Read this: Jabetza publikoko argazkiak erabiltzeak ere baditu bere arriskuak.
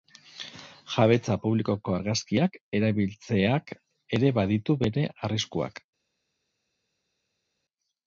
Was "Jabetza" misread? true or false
false